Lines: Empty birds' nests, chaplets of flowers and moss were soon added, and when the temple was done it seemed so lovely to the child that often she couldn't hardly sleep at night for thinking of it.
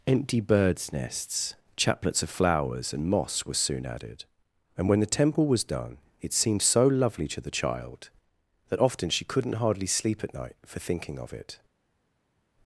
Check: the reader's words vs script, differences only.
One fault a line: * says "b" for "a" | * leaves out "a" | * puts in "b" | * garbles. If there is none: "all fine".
all fine